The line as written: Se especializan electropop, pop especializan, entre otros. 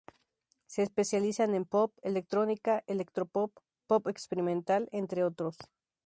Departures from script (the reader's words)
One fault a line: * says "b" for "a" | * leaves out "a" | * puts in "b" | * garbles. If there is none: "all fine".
* puts in "en pop electrónica"
* says "experimental" for "especializan"